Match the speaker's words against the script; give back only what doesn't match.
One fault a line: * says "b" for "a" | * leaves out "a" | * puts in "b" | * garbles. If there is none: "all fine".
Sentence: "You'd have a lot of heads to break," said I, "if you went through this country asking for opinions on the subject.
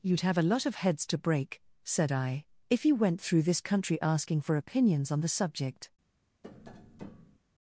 all fine